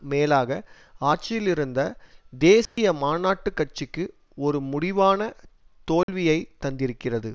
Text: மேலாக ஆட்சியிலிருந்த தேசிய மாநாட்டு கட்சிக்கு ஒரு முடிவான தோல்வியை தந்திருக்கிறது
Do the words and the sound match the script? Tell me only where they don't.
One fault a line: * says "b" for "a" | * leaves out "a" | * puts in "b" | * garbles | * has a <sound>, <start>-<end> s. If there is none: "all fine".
* has a dropout, 2.7-2.8 s
* has a dropout, 6.0-6.1 s